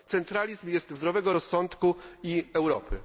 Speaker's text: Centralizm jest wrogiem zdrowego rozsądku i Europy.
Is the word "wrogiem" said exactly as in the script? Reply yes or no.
no